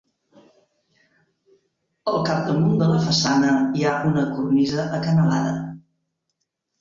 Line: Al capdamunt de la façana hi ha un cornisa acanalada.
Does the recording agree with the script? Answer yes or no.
no